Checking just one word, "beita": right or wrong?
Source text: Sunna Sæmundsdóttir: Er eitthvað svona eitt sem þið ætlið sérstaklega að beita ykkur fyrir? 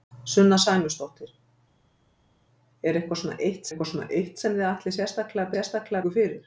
wrong